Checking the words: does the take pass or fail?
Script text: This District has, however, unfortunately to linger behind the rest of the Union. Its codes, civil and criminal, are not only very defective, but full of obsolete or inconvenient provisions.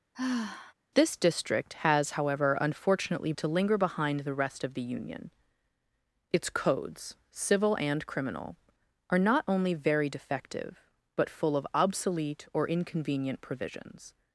pass